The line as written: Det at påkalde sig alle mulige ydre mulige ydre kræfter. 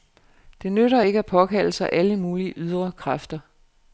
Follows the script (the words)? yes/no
no